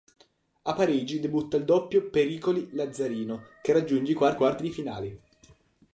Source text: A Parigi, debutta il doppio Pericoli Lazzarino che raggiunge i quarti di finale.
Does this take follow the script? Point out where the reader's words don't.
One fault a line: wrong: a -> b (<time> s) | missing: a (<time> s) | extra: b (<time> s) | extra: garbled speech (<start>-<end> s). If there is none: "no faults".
extra: quarti (4.3 s)